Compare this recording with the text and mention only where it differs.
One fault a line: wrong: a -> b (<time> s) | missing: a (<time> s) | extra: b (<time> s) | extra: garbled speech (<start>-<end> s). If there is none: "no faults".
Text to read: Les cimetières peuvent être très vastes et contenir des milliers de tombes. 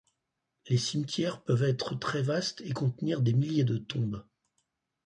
no faults